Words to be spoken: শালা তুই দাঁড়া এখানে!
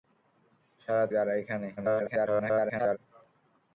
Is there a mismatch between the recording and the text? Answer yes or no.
yes